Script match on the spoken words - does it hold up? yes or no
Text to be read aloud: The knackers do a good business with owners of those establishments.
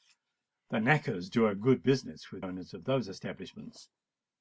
yes